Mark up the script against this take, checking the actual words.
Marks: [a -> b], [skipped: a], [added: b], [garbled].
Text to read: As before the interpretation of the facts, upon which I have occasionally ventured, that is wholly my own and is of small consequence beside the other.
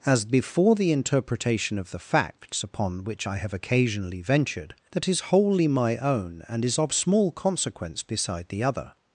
As before the interpretation of the facts, upon which I have occasionally ventured, that is wholly my own and is of small consequence beside the other.